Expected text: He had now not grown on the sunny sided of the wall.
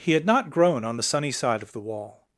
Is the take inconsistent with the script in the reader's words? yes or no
yes